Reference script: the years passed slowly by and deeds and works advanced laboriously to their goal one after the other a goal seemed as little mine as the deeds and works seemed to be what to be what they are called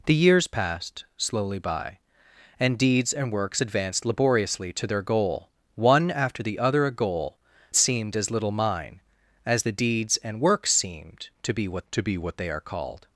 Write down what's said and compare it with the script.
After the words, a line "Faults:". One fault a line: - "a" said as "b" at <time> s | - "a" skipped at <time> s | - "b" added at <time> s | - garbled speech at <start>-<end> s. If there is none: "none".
the years passed slowly by and deeds and works advanced laboriously to their goal one after the other a goal seemed as little mine as the deeds and works seemed to be what to be what they are called
Faults:
none